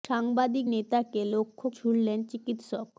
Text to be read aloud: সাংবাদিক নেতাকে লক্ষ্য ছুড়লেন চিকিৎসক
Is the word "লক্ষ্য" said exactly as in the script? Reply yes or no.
yes